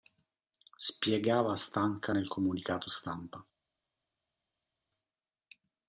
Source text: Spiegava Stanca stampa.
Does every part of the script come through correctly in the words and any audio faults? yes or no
no